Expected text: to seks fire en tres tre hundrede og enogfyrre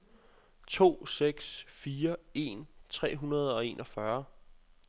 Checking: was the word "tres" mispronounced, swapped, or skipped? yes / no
yes